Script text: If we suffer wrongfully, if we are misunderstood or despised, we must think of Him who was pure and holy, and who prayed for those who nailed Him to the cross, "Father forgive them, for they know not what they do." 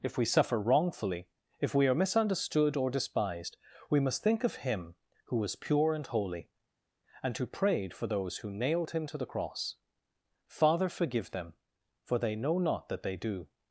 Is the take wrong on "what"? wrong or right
wrong